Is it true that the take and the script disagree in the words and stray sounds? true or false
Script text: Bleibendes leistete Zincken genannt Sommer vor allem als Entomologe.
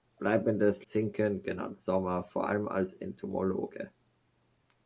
true